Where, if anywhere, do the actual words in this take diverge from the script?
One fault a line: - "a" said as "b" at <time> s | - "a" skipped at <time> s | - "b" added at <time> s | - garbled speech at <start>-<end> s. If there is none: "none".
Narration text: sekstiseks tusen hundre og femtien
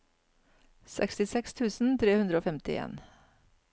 - "tre" added at 2.0 s